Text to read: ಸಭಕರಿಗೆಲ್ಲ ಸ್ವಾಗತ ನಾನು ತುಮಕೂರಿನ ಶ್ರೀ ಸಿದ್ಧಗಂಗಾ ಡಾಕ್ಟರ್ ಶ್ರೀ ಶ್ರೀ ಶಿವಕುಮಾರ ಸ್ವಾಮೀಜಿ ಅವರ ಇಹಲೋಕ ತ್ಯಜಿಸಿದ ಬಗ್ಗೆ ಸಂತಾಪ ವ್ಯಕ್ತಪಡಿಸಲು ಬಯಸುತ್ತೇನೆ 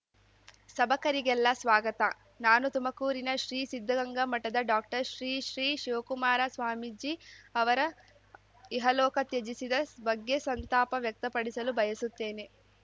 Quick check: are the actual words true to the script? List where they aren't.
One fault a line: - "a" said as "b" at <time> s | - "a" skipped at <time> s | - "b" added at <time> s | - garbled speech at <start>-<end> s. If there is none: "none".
- "ಮಠದ" added at 4.2 s